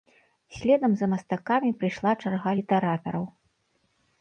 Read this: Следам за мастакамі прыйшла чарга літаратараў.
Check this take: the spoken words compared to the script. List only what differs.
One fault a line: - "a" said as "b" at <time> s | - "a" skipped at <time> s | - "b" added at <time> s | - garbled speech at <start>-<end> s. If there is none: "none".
none